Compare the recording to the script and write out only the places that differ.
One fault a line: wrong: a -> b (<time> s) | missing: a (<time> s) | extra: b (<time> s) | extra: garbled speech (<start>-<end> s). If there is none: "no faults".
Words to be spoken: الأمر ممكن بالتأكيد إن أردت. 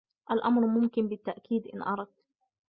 no faults